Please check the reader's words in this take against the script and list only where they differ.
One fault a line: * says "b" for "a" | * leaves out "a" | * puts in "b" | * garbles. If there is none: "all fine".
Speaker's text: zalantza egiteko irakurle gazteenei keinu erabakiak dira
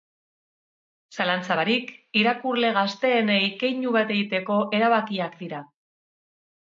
* says "barik" for "egiteko"
* puts in "bat egiteko"